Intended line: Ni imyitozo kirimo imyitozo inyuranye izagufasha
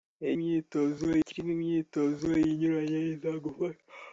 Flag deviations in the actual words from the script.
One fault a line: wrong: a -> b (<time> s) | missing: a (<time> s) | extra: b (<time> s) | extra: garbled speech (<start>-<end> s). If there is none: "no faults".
no faults